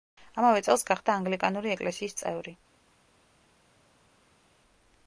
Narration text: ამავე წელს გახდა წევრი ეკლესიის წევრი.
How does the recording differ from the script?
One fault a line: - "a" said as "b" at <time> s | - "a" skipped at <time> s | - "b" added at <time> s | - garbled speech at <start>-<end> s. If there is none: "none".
- "წევრი" said as "ანგლიკანური" at 1.2 s